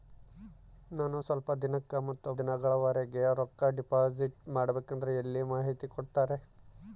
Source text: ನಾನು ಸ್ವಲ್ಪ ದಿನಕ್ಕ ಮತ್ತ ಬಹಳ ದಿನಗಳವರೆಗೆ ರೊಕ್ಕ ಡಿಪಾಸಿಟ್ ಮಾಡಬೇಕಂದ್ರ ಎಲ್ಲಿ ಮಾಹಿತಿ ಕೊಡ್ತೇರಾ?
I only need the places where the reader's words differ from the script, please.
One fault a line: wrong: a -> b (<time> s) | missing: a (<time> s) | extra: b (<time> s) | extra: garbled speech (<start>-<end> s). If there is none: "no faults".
missing: ಬಹಳ (2.3 s)